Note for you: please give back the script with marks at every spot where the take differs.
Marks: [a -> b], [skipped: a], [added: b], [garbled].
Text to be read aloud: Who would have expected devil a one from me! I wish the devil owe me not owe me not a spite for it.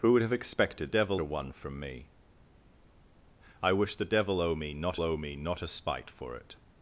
Who would have expected devil a one from me! I wish the devil owe me not owe me not a spite for it.